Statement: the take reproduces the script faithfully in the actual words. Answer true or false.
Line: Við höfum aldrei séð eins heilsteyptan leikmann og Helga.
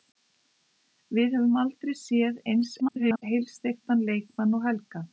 false